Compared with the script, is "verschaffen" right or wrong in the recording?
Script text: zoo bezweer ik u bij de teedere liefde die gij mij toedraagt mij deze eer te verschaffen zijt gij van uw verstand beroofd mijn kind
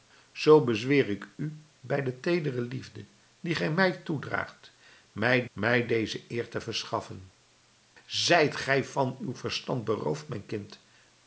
right